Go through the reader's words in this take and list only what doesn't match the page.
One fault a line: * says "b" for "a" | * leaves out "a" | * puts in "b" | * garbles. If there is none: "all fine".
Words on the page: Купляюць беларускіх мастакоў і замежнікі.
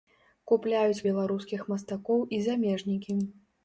all fine